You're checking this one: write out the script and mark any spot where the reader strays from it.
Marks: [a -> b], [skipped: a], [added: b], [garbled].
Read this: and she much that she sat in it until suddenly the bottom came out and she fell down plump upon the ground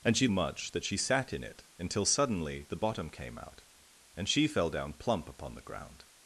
and she much that she sat in it until suddenly the bottom came out and she fell down plump upon the ground